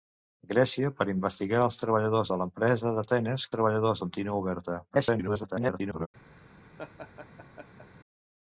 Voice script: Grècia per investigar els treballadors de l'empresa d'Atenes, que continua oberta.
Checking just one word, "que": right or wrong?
wrong